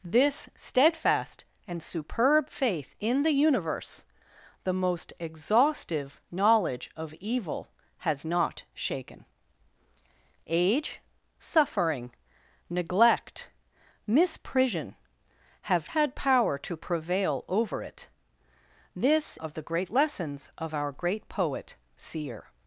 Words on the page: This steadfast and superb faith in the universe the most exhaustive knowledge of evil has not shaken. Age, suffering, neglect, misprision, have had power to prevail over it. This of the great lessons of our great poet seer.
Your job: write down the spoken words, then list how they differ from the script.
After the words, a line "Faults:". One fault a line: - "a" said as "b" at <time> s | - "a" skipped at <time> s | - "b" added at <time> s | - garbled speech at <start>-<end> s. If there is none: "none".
This steadfast and superb faith in the universe the most exhaustive knowledge of evil has not shaken. Age, suffering, neglect, misprision, have had power to prevail over it. This of the great lessons of our great poet seer.
Faults:
none